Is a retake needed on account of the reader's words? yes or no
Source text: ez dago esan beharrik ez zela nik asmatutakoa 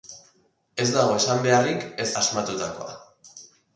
yes